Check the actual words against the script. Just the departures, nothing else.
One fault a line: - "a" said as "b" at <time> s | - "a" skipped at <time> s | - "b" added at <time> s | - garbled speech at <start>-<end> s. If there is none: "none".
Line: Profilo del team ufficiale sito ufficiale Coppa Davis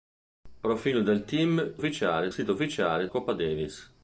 none